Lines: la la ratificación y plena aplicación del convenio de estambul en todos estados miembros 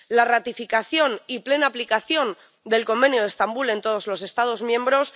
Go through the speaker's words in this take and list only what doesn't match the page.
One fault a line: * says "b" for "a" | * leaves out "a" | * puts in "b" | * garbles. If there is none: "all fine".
* leaves out "la"
* puts in "los"